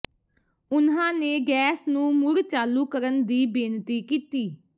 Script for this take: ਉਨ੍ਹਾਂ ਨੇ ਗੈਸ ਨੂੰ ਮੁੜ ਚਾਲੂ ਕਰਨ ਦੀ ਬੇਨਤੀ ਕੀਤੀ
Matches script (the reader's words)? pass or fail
pass